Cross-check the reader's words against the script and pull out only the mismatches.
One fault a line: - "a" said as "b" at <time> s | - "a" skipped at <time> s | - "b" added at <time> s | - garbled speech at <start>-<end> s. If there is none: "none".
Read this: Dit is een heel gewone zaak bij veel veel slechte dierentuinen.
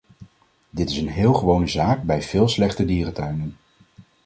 - "veel" skipped at 2.5 s